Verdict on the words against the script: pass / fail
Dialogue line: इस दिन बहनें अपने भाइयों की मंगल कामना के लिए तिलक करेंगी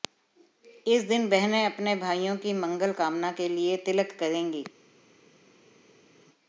pass